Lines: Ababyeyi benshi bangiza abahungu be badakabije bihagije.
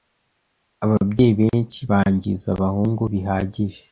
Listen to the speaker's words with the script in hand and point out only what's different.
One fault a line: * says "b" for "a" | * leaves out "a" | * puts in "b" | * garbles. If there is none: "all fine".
* leaves out "be badakabije"